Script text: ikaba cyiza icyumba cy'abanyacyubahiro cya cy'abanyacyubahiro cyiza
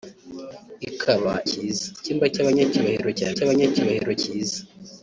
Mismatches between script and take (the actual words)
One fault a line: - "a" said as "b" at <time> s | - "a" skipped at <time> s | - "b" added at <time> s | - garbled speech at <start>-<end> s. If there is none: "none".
none